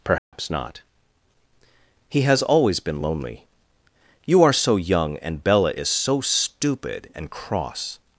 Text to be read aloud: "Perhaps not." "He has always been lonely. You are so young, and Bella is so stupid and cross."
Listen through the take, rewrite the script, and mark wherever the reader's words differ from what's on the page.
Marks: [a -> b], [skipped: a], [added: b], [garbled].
"Perhaps not." "He has always been lonely. You are so young, and Bella is so stupid and cross."